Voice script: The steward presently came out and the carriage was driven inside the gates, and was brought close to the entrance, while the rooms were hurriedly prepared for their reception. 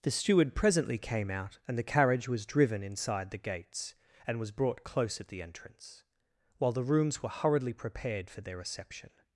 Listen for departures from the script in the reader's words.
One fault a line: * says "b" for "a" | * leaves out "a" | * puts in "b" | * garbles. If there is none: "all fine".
* says "at" for "to"